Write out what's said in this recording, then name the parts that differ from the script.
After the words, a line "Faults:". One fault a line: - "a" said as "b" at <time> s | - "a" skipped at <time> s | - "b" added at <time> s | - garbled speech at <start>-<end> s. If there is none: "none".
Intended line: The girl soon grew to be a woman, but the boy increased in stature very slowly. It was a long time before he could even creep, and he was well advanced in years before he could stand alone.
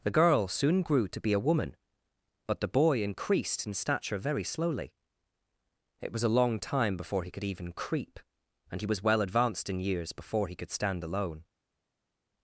The girl soon grew to be a woman, but the boy increased in stature very slowly. It was a long time before he could even creep, and he was well advanced in years before he could stand alone.
Faults:
none